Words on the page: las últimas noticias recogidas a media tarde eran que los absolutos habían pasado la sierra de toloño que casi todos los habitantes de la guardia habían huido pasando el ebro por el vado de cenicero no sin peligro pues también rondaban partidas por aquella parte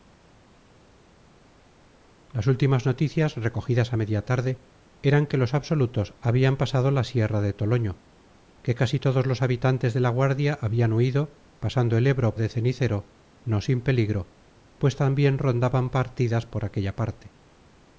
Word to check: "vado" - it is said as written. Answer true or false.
false